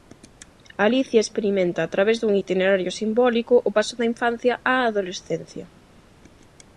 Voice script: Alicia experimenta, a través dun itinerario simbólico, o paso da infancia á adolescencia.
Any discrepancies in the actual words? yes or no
no